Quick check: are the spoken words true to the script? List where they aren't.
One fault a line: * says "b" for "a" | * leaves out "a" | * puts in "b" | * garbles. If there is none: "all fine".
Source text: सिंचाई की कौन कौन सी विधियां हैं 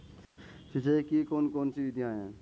all fine